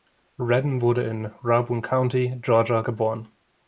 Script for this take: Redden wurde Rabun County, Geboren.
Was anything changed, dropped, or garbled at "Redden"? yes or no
no